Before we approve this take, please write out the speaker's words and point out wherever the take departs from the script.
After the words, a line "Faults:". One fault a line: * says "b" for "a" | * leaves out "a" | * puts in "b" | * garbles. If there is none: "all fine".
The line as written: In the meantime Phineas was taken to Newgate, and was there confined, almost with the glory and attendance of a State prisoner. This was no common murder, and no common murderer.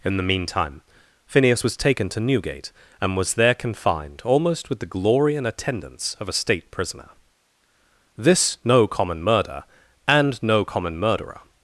In the meantime Phineas was taken to Newgate, and was there confined, almost with the glory and attendance of a State prisoner. This no common murder, and no common murderer.
Faults:
* leaves out "was"